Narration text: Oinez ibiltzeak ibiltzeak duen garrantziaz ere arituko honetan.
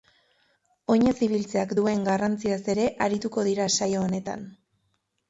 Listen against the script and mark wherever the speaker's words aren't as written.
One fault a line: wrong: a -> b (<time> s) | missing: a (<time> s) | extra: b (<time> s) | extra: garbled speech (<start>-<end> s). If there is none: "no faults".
missing: ibiltzeak (1.8 s)
extra: dira saio (3.5 s)